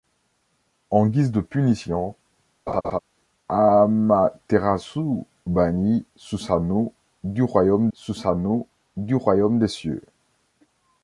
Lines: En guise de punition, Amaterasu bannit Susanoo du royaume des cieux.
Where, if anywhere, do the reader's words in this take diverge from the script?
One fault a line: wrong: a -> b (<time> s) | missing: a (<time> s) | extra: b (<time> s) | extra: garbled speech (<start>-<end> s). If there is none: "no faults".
extra: Susanoo du royaume (7.9 s)